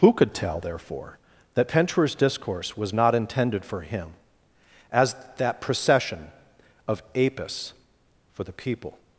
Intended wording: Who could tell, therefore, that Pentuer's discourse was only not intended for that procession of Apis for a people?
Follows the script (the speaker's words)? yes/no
no